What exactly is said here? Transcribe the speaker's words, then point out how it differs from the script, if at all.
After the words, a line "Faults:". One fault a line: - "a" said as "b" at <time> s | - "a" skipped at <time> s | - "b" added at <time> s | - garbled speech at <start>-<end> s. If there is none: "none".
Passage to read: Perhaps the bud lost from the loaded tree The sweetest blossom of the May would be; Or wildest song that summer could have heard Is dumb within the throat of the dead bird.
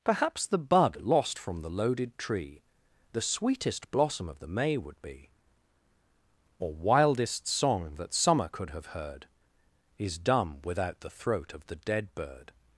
Perhaps the bud lost from the loaded tree The sweetest blossom of the May would be; Or wildest song that summer could have heard Is dumb without the throat of the dead bird.
Faults:
- "within" said as "without" at 10.6 s